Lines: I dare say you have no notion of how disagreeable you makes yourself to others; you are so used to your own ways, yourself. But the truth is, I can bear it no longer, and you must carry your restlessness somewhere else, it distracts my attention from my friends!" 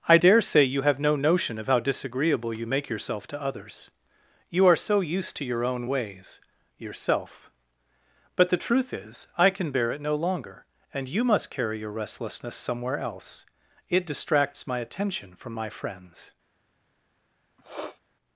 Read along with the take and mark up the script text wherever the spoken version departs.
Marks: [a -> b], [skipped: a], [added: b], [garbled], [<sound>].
I dare say you have no notion of how disagreeable you [makes -> make] yourself to others; you are so used to your own ways, yourself. But the truth is, I can bear it no longer, and you must carry your restlessness somewhere else, it distracts my attention from my friends!" [sniff]